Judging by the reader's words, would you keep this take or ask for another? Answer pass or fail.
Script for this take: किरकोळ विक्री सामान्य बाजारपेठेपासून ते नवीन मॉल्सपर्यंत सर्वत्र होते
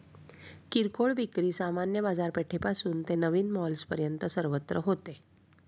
pass